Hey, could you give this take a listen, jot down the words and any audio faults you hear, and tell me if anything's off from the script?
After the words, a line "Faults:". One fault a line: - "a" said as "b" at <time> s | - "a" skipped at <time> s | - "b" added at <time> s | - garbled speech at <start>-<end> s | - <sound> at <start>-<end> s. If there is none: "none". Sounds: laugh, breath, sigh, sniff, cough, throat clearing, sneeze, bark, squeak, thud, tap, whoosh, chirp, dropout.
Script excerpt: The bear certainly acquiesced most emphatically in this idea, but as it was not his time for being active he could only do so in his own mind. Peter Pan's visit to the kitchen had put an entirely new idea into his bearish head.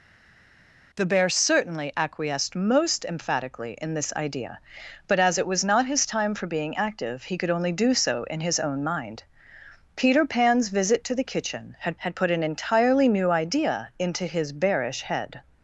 The bear certainly acquiesced most emphatically in this idea, but as it was not his time for being active he could only do so in his own mind. Peter Pan's visit to the kitchen had had put an entirely new idea into his bearish head.
Faults:
- "had" added at 12.0 s